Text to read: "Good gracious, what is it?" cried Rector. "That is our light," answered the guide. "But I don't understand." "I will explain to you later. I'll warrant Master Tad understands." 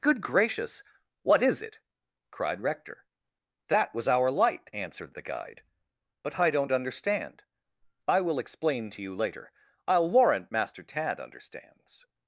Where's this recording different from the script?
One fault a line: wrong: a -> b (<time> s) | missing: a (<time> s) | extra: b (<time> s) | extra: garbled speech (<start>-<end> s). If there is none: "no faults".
wrong: is -> was (3.9 s)